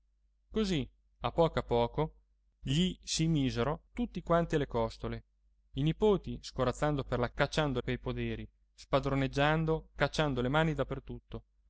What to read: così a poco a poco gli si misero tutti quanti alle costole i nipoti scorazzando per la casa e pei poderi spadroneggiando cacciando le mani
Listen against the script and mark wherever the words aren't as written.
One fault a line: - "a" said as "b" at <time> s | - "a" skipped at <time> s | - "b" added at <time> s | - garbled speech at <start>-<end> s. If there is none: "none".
- "casa" said as "cacciando" at 7.3 s